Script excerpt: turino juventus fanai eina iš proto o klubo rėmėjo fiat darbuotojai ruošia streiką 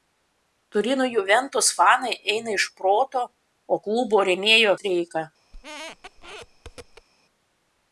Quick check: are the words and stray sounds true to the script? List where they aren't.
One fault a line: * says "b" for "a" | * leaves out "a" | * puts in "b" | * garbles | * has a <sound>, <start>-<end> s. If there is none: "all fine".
* leaves out "fiat darbuotojai ruošia"
* has a squeak, 5.5-7.1 s